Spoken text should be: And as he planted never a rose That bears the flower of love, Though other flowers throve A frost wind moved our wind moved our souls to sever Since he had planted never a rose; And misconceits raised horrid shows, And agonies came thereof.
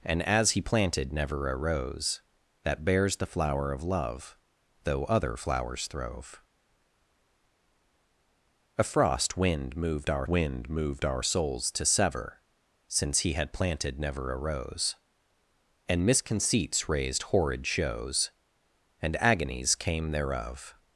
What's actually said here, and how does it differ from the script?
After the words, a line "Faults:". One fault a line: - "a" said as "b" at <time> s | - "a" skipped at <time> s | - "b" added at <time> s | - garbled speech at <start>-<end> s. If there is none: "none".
And as he planted never a rose That bears the flower of love, Though other flowers throve A frost wind moved our wind moved our souls to sever Since he had planted never a rose; And misconceits raised horrid shows, And agonies came thereof.
Faults:
none